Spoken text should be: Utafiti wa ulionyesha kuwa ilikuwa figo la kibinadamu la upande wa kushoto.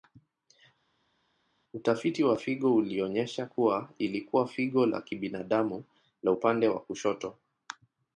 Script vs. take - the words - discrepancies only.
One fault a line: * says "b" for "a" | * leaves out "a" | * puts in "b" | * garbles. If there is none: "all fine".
* puts in "figo"